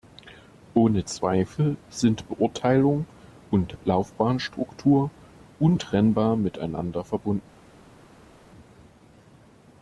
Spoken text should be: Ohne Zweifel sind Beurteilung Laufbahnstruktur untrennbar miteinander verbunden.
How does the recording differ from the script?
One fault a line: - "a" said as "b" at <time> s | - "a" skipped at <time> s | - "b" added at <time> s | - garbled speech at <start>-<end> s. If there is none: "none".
- "und" added at 3.5 s